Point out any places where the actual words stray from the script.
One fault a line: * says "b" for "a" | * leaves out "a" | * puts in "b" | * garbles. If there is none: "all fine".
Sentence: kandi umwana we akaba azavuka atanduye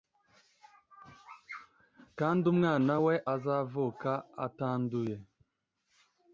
* leaves out "akaba"